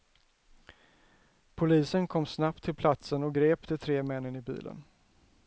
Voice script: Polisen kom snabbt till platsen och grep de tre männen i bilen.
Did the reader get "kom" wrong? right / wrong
right